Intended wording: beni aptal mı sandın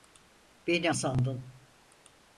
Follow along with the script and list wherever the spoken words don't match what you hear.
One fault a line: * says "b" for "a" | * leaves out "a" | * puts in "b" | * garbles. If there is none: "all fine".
* leaves out "aptal mı"